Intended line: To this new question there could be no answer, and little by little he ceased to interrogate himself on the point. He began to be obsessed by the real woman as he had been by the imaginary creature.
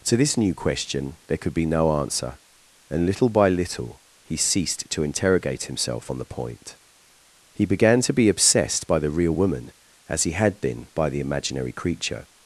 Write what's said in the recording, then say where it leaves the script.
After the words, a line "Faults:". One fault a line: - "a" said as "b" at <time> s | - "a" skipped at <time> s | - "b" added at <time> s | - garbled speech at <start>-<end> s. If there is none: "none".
To this new question there could be no answer, and little by little he ceased to interrogate himself on the point. He began to be obsessed by the real woman as he had been by the imaginary creature.
Faults:
none